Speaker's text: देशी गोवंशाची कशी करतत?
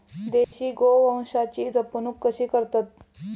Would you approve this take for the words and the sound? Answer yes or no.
no